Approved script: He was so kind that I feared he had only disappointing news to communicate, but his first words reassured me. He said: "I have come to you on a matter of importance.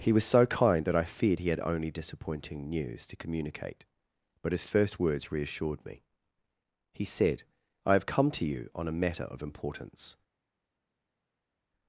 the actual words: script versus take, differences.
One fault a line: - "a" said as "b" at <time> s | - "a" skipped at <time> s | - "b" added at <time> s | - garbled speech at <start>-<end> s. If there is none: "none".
none